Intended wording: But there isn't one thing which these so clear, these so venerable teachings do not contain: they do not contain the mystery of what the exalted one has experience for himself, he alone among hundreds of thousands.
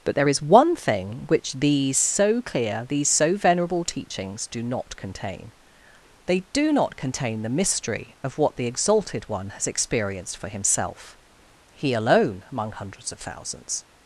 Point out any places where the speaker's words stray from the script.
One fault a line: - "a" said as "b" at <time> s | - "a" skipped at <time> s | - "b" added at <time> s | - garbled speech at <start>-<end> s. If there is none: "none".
- "isn't" said as "is" at 0.3 s
- "experience" said as "experienced" at 9.7 s